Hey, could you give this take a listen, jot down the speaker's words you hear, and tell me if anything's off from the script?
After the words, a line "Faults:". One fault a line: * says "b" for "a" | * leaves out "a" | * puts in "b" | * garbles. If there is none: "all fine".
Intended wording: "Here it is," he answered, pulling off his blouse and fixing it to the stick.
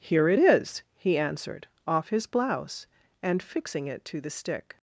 "Here it is," he answered, off his blouse and fixing it to the stick.
Faults:
* leaves out "pulling"